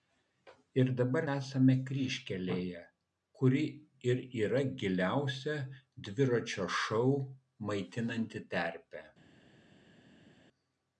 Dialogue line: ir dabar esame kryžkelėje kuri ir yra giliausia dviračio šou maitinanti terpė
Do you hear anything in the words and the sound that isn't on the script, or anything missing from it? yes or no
no